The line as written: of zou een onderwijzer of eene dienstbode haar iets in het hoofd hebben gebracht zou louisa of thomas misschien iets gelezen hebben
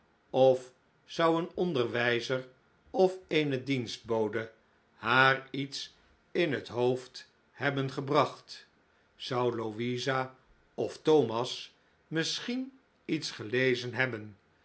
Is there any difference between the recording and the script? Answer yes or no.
no